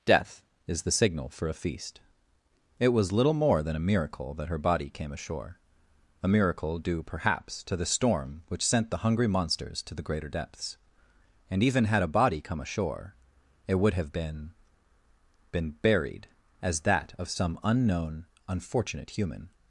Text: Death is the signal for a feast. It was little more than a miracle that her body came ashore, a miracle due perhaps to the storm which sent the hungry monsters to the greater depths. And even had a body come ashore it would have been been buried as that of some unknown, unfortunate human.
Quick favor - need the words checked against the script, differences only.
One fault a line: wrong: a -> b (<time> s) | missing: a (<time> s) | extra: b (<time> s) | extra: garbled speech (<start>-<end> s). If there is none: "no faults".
no faults